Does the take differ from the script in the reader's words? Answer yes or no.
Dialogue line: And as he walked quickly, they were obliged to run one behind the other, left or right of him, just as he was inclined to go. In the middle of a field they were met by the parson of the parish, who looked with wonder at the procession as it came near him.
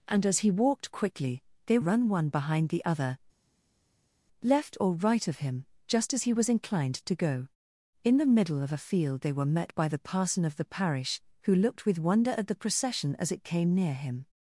yes